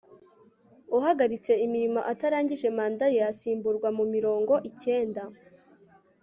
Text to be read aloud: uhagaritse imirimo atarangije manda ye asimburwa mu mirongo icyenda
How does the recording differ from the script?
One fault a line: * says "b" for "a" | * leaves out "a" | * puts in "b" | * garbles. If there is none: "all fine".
all fine